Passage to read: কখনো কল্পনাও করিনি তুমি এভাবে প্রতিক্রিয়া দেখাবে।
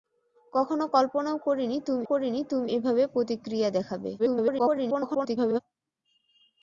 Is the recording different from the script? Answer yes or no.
yes